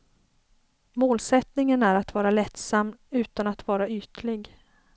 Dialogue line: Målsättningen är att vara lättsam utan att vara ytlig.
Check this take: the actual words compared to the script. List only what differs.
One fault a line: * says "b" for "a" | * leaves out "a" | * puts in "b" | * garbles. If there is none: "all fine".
all fine